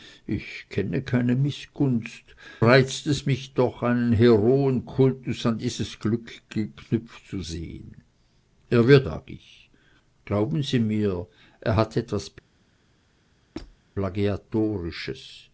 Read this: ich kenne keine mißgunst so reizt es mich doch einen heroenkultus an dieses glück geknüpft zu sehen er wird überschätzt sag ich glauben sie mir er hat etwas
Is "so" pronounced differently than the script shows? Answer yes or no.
yes